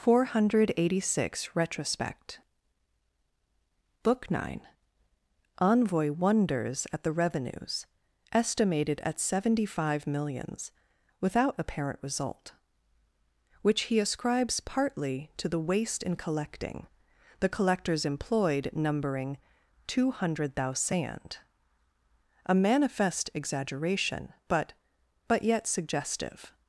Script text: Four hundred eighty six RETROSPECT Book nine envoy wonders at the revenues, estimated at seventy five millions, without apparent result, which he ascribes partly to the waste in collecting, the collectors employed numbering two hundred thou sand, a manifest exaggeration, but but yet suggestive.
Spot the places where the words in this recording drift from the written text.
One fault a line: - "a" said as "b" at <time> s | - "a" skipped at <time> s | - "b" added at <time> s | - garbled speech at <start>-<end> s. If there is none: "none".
none